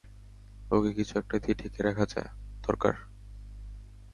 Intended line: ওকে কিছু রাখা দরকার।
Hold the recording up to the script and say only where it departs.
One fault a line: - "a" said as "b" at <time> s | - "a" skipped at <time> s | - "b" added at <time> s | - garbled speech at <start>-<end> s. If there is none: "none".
- "একটা দিয়ে ঢেকে" added at 1.2 s